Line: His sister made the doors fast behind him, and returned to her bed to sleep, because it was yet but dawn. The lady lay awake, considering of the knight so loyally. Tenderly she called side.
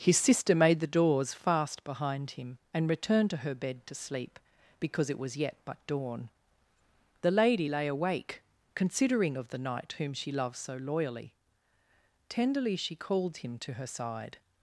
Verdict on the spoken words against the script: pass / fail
fail